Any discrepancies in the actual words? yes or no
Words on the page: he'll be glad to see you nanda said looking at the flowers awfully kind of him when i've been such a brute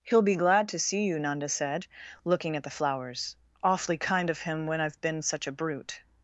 no